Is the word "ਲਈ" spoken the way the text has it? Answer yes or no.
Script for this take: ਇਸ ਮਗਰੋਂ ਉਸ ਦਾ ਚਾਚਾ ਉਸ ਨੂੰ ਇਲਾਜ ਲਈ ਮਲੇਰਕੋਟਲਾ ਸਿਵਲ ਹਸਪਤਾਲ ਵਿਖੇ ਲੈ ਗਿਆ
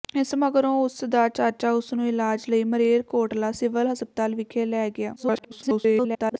yes